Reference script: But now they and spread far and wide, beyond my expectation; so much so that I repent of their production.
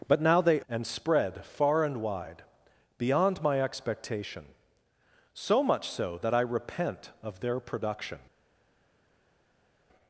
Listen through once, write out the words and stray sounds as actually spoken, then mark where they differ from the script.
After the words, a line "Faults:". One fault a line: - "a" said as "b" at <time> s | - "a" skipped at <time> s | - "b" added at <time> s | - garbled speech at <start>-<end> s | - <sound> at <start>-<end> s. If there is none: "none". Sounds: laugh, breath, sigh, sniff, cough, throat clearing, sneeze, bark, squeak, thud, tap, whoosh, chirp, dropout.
But now they and spread far and wide, beyond my expectation; so much so that I repent of their production.
Faults:
none